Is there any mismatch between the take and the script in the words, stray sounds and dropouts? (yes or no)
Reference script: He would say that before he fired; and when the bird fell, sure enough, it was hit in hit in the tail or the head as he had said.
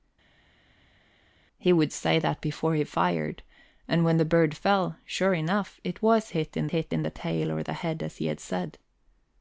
no